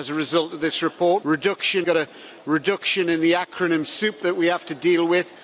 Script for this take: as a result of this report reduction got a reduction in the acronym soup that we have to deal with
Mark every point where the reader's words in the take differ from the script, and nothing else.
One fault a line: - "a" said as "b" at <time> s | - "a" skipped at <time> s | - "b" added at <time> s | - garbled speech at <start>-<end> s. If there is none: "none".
none